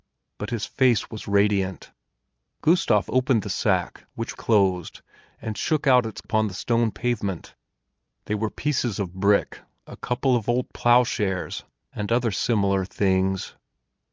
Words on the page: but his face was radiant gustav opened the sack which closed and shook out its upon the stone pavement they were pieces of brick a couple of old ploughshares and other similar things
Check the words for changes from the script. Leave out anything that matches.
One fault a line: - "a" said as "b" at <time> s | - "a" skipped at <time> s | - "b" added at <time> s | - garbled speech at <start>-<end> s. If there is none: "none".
none